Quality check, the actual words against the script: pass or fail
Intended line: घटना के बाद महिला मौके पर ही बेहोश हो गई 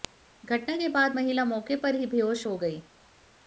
pass